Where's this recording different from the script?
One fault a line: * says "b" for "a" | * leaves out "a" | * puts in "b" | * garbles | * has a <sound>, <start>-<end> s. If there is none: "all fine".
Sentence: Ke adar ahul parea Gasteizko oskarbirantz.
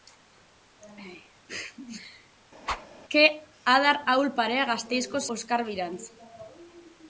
* has a whoosh, 2.6-2.9 s